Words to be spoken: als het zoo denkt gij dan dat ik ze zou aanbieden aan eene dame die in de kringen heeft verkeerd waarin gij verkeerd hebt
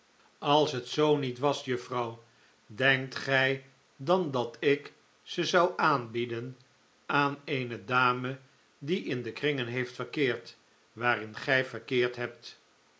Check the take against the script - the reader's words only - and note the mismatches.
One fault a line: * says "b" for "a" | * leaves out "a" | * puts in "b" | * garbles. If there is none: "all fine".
* puts in "niet was juffrouw"